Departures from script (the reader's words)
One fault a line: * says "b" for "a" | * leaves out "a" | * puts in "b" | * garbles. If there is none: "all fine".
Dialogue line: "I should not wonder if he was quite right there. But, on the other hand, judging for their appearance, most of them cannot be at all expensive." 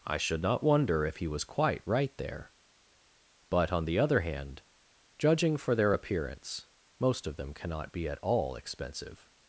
all fine